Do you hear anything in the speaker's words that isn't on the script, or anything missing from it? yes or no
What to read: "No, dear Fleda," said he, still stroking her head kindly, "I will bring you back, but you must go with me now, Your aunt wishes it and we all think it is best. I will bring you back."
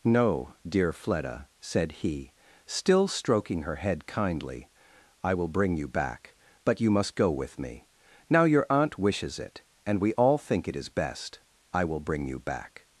no